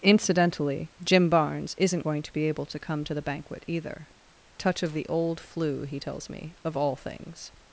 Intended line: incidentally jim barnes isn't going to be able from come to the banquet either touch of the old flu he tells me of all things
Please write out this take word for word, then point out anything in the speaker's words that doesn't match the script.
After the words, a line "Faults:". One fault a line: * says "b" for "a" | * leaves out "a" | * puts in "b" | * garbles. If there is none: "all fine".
incidentally jim barnes isn't going to be able to come to the banquet either touch of the old flu he tells me of all things
Faults:
* says "to" for "from"